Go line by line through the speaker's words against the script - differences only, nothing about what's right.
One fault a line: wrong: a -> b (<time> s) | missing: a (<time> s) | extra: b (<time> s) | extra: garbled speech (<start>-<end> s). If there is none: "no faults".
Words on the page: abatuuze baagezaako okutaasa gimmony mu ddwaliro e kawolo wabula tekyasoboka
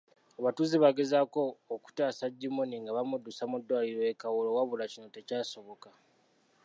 extra: nga bamuddusa (2.8 s)
extra: kino (4.9 s)